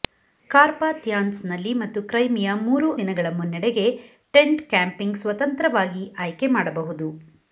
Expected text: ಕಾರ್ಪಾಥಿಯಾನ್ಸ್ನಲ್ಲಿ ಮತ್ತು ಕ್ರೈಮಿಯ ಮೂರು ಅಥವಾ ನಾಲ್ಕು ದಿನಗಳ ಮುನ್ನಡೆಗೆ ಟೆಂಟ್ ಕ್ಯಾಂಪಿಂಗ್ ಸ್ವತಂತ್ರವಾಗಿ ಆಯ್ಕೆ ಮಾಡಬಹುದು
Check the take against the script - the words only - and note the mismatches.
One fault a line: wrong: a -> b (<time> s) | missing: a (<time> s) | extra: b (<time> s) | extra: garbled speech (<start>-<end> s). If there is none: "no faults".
missing: ಅಥವಾ ನಾಲ್ಕು (2.9 s)